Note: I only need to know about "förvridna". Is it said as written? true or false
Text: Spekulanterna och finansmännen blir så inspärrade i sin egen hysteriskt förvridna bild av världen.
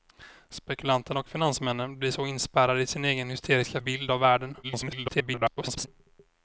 false